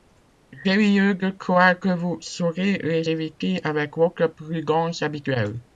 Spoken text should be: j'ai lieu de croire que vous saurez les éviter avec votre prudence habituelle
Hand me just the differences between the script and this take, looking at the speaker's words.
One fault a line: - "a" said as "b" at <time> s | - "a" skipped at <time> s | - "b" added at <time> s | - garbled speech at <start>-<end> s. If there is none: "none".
none